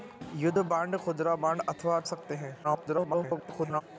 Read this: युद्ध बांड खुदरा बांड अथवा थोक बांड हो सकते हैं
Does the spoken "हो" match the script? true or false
false